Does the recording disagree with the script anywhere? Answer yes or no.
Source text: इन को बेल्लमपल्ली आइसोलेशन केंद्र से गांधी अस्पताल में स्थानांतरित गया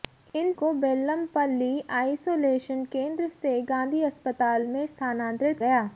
no